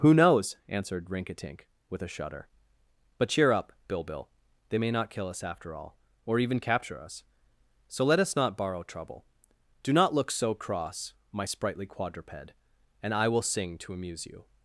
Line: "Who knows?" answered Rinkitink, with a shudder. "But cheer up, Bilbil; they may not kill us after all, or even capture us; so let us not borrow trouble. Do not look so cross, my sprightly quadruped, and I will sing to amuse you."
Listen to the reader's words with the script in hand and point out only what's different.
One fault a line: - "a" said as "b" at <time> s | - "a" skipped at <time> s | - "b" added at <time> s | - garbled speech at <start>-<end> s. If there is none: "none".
none